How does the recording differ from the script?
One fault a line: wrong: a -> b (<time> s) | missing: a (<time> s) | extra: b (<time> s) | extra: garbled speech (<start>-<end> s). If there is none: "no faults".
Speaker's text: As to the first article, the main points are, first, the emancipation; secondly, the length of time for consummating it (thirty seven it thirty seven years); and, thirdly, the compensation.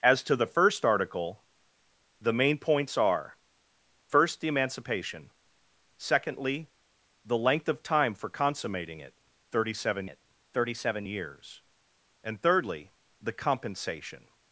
no faults